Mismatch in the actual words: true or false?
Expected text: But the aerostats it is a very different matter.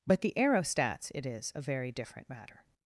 false